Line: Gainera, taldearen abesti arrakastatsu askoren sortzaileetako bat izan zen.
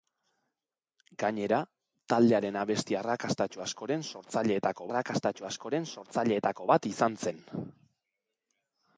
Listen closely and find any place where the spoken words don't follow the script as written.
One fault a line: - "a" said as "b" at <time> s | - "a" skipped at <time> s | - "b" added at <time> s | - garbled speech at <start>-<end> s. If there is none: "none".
- "arrakastatsu askoren sortzaileetako" added at 4.9 s